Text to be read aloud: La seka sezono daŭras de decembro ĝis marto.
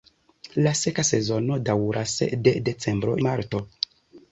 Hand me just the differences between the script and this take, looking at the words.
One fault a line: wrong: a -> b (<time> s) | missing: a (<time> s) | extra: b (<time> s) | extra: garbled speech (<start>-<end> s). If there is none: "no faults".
missing: ĝis (3.1 s)